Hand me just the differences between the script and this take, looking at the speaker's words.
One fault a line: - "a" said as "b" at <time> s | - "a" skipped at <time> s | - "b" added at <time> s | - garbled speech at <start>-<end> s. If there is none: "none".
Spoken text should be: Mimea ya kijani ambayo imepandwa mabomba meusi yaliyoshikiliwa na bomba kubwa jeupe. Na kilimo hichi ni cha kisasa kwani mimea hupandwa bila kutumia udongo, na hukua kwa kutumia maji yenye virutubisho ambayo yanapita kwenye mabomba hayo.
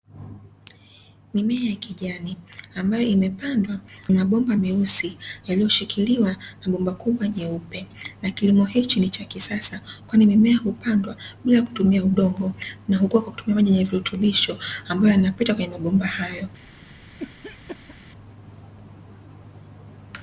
none